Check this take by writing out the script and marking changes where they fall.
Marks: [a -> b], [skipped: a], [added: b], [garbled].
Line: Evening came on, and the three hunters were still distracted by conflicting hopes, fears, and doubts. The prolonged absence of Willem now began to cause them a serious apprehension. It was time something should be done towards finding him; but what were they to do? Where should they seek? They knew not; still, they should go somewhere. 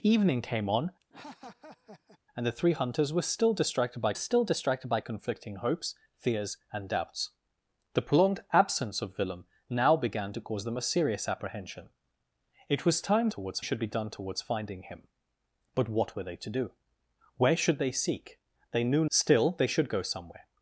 Evening came on, and the three hunters were still distracted by [added: still distracted by] conflicting hopes, fears, and doubts. The prolonged absence of Willem now began to cause them a serious apprehension. It was time [something -> towards] should be done towards finding him; but what were they to do? Where should they seek? They knew [skipped: not;] still, they should go somewhere.